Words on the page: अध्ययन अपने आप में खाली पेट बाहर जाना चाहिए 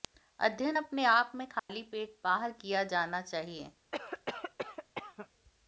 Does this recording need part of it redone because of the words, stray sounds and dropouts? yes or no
yes